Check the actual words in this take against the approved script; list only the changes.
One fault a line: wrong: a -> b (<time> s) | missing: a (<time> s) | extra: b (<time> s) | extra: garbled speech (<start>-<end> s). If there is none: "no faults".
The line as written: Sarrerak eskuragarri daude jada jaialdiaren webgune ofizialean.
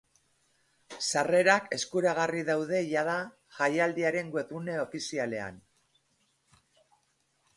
no faults